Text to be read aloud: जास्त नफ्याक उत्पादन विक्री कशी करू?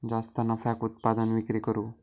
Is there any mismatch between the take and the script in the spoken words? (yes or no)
yes